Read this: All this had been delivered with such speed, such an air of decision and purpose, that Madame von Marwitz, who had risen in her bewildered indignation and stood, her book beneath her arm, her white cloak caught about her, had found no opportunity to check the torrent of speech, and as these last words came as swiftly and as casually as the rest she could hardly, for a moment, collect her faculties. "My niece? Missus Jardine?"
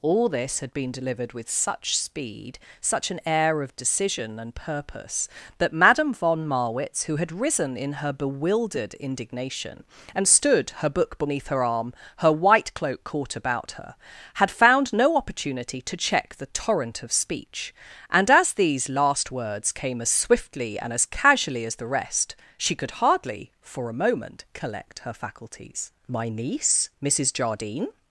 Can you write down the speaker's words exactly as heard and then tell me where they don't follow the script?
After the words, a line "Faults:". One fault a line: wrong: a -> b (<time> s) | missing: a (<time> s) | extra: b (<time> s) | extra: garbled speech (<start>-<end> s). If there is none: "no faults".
All this had been delivered with such speed, such an air of decision and purpose, that Madame von Marwitz, who had risen in her bewildered indignation and stood, her book beneath her arm, her white cloak caught about her, had found no opportunity to check the torrent of speech, and as these last words came as swiftly and as casually as the rest she could hardly, for a moment, collect her faculties. "My niece? Missus Jardine?"
Faults:
no faults